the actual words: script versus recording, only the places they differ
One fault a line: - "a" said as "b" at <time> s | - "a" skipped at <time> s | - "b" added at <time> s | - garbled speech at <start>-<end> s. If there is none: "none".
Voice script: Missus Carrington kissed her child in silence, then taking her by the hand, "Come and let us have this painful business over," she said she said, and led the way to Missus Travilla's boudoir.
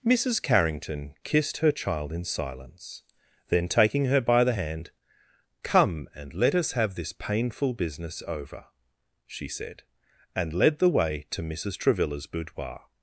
- "she said" skipped at 9.8 s